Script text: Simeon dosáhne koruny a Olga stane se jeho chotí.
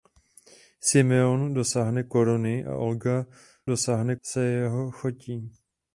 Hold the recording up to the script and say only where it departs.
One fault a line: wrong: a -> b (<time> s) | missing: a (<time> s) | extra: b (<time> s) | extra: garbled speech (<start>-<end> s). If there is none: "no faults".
wrong: stane -> dosáhne (3.7 s)